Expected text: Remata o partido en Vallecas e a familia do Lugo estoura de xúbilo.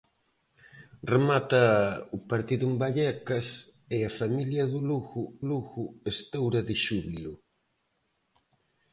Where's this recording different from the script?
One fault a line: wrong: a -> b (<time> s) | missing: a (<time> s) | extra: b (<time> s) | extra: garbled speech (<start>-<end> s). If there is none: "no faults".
extra: Lugo (5.5 s)